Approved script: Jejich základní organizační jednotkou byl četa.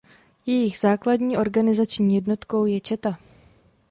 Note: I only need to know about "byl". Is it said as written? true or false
false